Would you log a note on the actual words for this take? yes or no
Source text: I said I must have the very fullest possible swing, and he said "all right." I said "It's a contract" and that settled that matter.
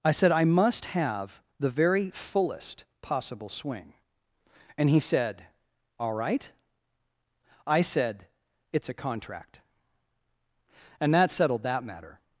no